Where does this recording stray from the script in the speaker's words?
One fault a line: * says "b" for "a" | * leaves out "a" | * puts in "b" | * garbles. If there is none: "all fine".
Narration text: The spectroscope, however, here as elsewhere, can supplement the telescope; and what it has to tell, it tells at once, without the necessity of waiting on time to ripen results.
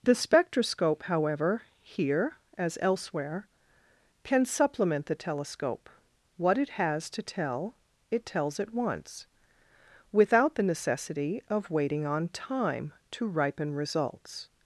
* leaves out "and"